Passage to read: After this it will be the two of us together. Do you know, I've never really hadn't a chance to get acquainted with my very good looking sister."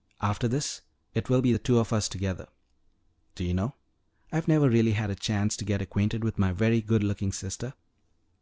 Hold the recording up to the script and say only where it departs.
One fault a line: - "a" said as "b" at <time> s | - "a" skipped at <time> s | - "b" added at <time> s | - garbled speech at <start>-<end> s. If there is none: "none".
- "hadn't" said as "had" at 4.9 s